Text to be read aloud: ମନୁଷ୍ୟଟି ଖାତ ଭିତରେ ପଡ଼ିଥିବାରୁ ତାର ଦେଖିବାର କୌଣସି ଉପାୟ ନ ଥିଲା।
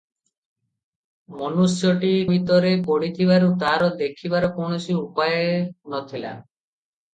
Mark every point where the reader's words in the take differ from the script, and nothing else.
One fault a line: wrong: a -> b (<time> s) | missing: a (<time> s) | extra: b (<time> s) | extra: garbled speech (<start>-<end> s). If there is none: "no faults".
missing: ଖାତ (2.1 s)